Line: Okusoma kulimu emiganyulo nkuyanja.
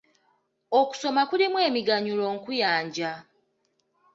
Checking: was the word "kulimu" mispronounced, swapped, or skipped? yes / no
no